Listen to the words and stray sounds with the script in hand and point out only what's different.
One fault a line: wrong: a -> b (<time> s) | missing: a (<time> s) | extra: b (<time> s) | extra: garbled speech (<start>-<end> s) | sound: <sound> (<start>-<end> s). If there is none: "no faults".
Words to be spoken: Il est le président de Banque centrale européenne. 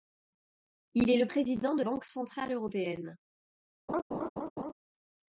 sound: laugh (3.9-4.7 s)